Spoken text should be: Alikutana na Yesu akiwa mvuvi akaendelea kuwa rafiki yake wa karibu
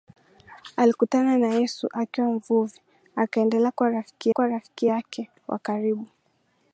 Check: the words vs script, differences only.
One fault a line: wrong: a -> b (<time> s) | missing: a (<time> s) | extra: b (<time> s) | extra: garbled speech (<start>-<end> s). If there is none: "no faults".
extra: kuwa rafiki (4.3 s)